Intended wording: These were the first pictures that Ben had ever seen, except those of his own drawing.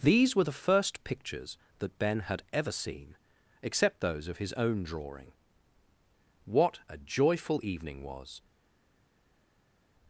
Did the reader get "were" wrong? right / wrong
right